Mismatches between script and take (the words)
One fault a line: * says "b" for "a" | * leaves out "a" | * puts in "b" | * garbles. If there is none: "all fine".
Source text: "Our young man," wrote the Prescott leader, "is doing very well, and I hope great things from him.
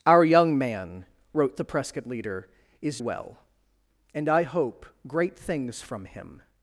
* leaves out "doing very"